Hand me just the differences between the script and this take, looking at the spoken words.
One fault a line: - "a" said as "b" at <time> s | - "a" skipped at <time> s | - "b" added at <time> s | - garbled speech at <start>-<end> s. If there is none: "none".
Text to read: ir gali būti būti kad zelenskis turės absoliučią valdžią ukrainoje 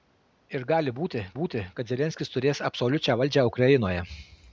none